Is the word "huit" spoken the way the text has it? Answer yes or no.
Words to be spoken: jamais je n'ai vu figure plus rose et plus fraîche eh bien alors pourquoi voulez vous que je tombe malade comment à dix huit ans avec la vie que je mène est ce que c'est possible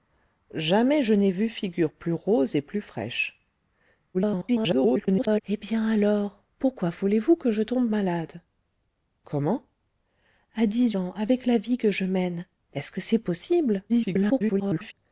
no